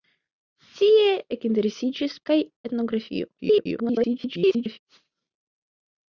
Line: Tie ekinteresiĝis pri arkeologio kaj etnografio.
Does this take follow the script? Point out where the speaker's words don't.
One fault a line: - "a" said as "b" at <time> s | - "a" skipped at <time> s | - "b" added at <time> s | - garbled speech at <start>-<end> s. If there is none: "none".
- "pri arkeologio" skipped at 2.2 s
- garbled speech at 3.4-4.8 s